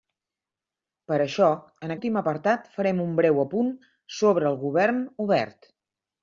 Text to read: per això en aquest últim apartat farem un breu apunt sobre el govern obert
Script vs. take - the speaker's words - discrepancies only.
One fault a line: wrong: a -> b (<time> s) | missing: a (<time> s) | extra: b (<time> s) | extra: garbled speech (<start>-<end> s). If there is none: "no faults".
missing: aquest (1.9 s)